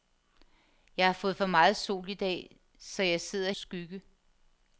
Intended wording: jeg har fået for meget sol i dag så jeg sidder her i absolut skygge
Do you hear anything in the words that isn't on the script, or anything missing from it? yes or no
yes